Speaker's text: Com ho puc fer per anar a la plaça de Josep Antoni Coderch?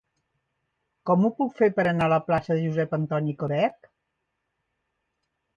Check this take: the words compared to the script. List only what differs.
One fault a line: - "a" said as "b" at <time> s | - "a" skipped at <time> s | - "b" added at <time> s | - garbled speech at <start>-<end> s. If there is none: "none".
none